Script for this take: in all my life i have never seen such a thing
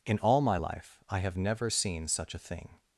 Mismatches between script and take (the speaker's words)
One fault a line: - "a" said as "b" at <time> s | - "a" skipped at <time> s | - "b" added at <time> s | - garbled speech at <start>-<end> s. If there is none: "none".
none